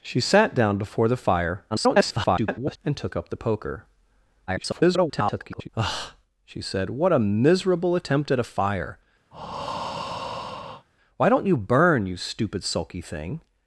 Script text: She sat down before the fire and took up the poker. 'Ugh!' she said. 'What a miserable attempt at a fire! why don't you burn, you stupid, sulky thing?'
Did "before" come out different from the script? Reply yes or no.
no